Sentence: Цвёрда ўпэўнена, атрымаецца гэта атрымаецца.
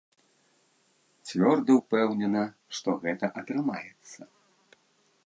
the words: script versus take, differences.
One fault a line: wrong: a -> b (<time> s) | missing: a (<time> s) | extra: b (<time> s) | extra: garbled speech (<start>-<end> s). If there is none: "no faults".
wrong: атрымаецца -> што (2.8 s)